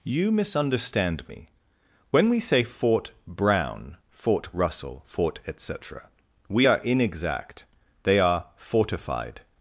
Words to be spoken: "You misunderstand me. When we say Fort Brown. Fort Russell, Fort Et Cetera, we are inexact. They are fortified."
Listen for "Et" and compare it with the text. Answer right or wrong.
right